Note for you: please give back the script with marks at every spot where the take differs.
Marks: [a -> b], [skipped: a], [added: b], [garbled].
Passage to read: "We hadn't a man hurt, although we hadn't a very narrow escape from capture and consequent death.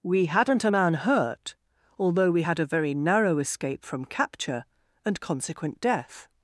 "We hadn't a man hurt, although we [hadn't -> had] a very narrow escape from capture and consequent death.